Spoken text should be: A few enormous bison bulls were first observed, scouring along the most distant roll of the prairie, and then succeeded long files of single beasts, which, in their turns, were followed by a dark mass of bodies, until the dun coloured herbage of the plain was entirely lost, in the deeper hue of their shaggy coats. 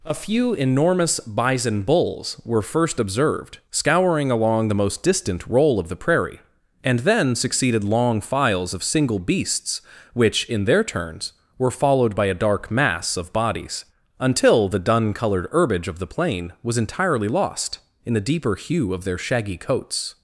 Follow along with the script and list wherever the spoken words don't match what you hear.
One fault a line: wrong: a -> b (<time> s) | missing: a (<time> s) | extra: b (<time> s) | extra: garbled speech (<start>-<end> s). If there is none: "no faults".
no faults